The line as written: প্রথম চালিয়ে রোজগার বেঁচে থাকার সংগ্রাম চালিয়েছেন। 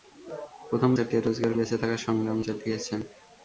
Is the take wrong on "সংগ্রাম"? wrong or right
right